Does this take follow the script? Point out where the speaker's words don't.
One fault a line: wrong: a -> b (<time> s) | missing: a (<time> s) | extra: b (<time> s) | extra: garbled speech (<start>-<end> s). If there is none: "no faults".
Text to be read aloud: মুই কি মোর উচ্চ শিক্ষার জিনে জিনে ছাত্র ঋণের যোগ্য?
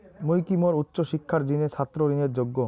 missing: জিনে (1.7 s)